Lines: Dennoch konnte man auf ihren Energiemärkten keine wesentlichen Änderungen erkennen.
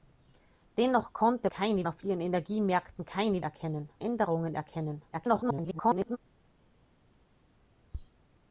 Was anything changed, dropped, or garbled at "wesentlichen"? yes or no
yes